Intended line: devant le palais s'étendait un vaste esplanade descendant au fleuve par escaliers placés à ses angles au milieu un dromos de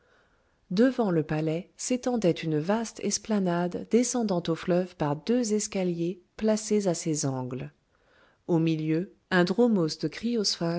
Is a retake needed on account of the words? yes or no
yes